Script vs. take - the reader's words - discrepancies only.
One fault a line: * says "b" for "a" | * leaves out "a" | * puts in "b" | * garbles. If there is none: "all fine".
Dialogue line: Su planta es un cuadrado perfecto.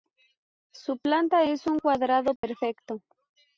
all fine